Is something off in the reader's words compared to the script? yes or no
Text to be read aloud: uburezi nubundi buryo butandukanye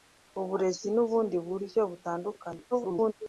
yes